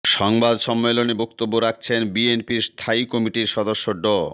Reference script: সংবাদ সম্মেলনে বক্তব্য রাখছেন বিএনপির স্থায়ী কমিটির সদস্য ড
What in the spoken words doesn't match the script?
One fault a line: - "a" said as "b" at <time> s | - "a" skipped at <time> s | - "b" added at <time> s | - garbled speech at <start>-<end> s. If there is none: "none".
none